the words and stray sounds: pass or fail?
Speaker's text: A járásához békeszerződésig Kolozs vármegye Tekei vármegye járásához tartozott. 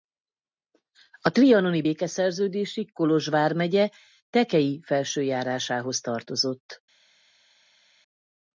fail